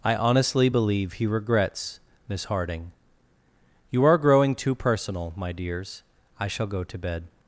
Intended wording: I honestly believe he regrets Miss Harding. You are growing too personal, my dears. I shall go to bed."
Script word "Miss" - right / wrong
right